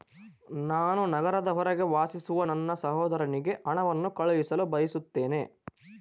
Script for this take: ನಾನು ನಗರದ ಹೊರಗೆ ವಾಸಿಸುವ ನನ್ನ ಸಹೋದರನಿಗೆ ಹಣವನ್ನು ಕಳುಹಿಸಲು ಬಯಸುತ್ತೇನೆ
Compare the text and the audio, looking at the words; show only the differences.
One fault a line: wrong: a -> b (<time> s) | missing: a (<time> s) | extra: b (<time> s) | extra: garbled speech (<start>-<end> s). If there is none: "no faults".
no faults